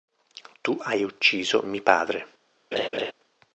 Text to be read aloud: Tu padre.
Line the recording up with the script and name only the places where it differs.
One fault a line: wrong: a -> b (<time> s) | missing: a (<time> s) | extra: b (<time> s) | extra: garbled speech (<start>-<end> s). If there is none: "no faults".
extra: hai ucciso mi (0.8 s)